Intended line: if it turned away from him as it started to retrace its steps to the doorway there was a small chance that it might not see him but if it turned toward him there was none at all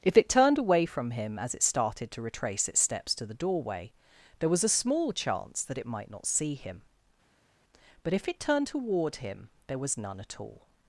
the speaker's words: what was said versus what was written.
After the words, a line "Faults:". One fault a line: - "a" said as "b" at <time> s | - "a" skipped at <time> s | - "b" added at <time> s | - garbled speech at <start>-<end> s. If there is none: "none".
if it turned away from him as it started to retrace its steps to the doorway there was a small chance that it might not see him but if it turned toward him there was none at all
Faults:
none